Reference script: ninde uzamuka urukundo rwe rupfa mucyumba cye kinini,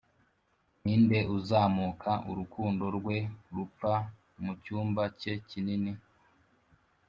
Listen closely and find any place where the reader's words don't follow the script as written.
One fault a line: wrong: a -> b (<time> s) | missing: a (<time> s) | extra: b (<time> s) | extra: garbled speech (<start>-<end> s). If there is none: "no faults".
no faults